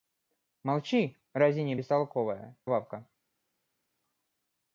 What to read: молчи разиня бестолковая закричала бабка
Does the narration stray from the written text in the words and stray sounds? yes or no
yes